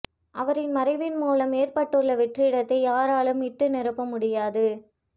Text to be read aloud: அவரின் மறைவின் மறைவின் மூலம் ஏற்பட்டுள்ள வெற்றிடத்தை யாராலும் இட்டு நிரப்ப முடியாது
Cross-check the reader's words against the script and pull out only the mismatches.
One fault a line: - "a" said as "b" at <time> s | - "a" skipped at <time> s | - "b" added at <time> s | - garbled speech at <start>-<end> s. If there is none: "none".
- "மறைவின்" skipped at 1.2 s